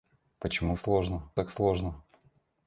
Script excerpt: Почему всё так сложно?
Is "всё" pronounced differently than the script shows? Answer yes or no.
yes